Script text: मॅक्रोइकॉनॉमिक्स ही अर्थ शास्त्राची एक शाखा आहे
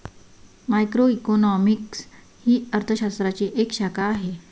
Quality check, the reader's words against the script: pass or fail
pass